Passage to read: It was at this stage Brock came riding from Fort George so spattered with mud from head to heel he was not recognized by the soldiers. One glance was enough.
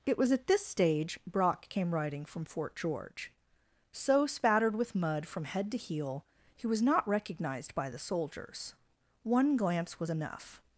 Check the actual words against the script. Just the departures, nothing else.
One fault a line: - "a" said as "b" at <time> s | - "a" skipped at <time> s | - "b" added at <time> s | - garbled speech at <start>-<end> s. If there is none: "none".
none